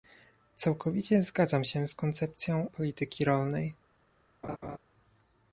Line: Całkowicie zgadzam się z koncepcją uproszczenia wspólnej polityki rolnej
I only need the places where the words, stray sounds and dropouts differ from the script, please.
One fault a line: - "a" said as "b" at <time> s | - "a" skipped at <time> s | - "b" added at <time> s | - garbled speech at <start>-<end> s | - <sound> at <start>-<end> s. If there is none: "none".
- "uproszczenia wspólnej" skipped at 2.7 s
- laugh at 4.4-4.8 s